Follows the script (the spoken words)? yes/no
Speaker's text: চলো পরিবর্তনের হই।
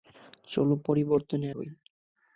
yes